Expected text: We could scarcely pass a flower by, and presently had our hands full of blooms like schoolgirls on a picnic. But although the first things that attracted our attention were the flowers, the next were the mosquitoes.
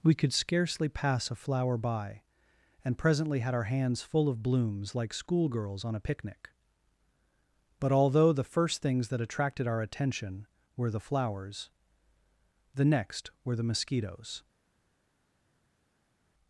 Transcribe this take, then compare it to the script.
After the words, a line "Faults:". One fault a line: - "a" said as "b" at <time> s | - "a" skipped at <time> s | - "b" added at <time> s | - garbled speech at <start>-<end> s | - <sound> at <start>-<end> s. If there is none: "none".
We could scarcely pass a flower by, and presently had our hands full of blooms like schoolgirls on a picnic. But although the first things that attracted our attention were the flowers, the next were the mosquitoes.
Faults:
none